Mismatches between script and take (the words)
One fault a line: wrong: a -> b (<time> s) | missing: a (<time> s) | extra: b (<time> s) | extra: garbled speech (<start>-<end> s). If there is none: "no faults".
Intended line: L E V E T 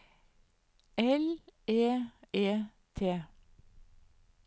missing: V (1.8 s)